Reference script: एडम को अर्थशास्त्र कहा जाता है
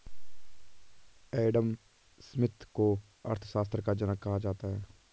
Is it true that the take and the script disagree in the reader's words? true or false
true